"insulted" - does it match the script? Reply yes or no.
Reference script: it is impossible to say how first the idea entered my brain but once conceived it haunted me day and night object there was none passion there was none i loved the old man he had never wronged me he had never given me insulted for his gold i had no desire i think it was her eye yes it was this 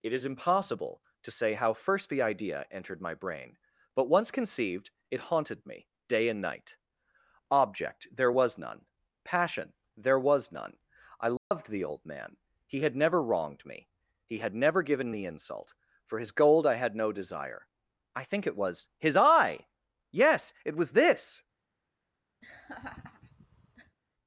no